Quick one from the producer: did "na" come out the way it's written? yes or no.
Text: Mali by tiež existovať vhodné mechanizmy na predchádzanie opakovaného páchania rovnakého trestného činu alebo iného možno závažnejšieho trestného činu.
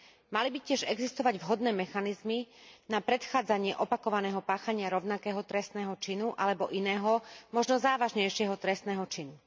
yes